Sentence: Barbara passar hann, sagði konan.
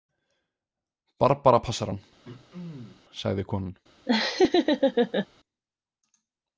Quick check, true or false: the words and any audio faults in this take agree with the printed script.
false